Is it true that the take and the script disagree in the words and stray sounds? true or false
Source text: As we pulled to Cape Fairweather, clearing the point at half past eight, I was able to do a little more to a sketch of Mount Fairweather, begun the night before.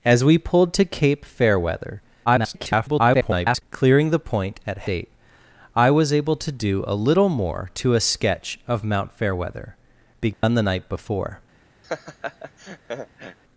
true